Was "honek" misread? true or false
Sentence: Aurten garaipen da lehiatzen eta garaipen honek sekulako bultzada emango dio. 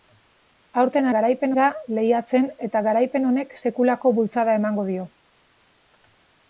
false